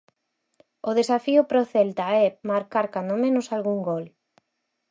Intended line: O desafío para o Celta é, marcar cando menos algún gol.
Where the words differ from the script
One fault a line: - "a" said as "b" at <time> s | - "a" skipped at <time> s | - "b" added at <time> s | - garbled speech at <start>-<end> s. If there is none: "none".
none